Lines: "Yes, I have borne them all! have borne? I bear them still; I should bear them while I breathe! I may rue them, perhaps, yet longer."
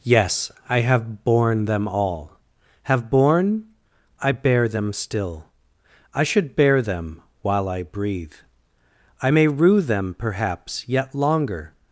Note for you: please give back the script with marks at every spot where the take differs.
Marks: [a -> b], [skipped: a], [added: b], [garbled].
"Yes, I have borne them all! have borne? I bear them still; I should bear them while I breathe! I may rue them, perhaps, yet longer."